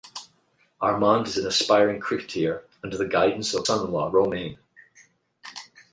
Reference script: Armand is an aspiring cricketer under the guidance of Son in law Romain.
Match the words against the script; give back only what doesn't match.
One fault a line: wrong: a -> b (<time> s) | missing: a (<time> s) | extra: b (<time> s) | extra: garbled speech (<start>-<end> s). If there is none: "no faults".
no faults